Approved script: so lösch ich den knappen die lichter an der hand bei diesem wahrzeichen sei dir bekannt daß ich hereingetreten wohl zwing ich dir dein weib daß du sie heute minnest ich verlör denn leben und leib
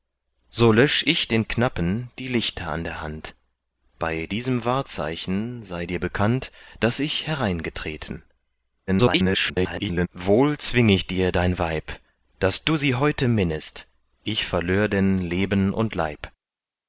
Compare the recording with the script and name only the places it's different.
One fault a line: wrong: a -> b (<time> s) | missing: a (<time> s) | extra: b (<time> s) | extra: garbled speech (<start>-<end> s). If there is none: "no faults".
extra: garbled speech (8.9-10.1 s)